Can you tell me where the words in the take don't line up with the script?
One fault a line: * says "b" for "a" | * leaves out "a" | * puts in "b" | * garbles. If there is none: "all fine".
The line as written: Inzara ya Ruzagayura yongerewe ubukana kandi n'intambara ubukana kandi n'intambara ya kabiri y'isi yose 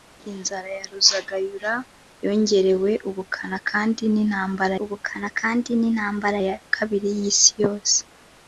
all fine